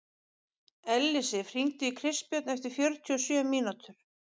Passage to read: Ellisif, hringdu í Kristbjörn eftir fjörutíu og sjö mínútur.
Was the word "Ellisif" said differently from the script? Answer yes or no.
no